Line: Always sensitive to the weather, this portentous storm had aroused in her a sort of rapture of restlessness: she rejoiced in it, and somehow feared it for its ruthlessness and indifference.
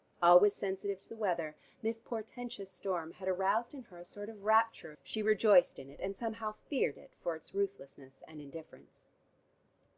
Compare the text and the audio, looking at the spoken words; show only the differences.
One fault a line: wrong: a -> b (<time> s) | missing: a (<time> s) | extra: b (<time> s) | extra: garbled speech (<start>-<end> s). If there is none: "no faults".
missing: of restlessness (4.9 s)